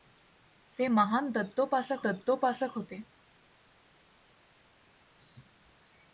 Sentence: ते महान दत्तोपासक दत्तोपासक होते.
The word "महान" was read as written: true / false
true